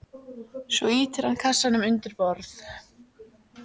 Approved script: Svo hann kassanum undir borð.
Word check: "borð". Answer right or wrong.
right